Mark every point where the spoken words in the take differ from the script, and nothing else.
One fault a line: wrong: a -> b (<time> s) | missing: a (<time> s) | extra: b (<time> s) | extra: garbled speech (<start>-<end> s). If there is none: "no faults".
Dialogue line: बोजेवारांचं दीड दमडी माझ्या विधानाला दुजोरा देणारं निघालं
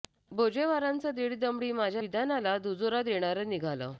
no faults